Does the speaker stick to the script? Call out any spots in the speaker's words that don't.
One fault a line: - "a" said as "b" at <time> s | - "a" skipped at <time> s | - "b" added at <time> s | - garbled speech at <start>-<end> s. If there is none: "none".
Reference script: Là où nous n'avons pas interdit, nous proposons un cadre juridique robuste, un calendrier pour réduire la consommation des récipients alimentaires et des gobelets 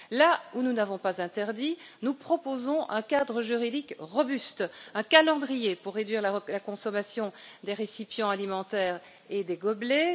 none